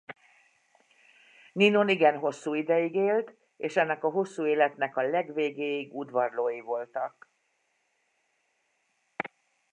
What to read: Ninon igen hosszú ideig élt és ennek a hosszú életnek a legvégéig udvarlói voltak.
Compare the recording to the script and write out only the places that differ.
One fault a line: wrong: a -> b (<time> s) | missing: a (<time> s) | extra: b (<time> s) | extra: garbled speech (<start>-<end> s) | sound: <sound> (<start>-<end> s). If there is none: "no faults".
no faults